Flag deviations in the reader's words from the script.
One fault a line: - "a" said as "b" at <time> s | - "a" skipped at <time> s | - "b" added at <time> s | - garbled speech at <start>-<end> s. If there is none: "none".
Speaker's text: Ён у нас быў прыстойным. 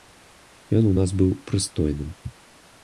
none